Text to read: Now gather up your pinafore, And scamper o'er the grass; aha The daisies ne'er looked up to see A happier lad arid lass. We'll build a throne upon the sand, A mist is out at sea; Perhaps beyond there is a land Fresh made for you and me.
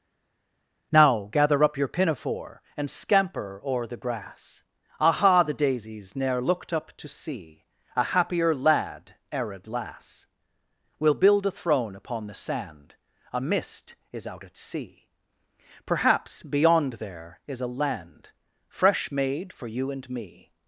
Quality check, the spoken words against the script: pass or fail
pass